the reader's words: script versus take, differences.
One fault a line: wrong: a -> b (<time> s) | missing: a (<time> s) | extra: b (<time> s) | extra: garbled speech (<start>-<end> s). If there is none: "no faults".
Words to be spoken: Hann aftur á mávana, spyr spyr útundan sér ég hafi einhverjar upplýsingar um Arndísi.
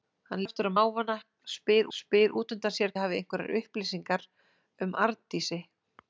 no faults